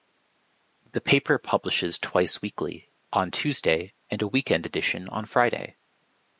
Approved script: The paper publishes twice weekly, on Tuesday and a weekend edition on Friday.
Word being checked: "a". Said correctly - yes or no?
yes